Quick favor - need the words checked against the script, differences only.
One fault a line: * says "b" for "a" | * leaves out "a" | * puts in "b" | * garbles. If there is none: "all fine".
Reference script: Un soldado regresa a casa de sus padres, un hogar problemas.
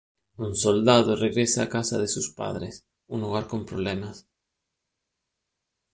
* puts in "con"